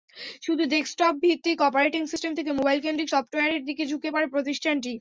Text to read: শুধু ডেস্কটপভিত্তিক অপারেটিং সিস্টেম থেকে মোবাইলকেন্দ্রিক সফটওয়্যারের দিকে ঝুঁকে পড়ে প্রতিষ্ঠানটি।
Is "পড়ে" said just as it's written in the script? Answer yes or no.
yes